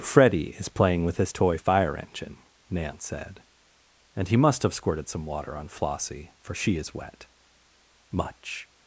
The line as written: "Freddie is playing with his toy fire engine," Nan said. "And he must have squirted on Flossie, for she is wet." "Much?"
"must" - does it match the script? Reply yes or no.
yes